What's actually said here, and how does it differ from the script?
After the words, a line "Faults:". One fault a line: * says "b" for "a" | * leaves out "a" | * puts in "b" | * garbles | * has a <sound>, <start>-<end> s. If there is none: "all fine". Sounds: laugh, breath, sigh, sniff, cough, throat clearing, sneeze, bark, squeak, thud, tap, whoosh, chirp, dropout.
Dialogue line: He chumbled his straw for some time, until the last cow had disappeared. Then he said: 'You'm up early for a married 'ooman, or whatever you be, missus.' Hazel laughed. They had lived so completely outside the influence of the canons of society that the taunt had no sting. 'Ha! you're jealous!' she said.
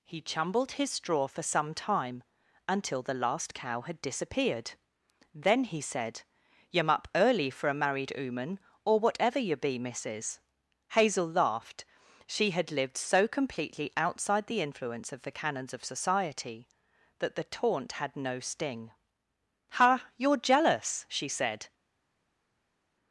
He chumbled his straw for some time, until the last cow had disappeared. Then he said: 'You'm up early for a married 'ooman, or whatever you be, missus.' Hazel laughed. She had lived so completely outside the influence of the canons of society that the taunt had no sting. 'Ha! you're jealous!' she said.
Faults:
* says "She" for "They"